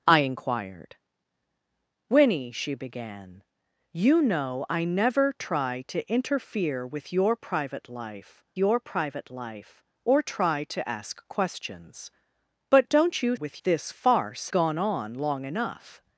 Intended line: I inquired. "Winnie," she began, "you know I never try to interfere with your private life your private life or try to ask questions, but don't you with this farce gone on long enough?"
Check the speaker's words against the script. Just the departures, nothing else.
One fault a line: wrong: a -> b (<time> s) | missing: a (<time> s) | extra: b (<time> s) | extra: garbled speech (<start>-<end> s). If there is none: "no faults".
no faults